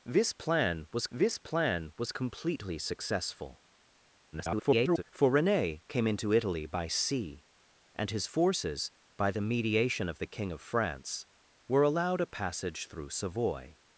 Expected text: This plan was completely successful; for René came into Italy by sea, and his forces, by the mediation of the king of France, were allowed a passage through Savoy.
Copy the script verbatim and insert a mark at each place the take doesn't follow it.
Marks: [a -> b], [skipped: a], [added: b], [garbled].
This plan was [added: this plan was] completely successful; [garbled] for René came into Italy by sea, and his forces, by the mediation of the king of France, were allowed a passage through Savoy.